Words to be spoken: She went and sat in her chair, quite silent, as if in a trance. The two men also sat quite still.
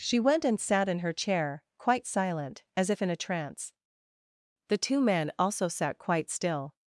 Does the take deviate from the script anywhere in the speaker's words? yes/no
no